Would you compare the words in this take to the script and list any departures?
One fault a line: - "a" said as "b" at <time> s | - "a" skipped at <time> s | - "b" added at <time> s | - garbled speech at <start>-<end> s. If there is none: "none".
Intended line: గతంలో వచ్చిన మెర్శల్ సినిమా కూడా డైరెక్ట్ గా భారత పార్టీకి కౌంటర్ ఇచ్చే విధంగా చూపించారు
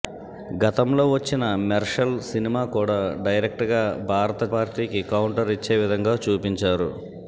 none